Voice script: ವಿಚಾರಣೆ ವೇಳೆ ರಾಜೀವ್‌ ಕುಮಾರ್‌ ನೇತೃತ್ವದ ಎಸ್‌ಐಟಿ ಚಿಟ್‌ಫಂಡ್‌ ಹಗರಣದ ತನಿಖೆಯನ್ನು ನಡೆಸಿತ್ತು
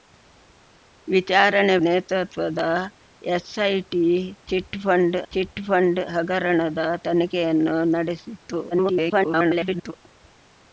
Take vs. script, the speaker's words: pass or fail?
fail